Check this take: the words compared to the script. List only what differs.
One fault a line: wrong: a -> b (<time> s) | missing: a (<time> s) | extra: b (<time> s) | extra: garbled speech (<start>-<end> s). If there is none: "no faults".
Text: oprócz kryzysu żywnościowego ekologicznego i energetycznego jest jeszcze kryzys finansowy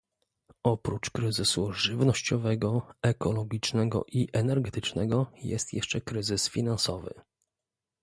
no faults